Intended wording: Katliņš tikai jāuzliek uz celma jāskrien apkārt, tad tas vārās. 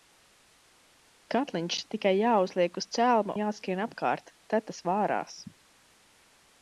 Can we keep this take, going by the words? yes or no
yes